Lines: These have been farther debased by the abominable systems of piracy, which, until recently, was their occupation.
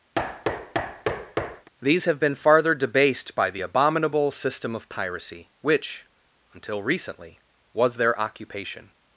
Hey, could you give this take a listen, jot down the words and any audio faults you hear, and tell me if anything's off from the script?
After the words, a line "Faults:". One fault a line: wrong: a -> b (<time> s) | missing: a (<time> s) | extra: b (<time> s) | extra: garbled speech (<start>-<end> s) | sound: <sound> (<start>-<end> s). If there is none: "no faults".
These have been farther debased by the abominable system of piracy, which, until recently, was their occupation.
Faults:
sound: thud (0.1-1.7 s)
wrong: systems -> system (4.3 s)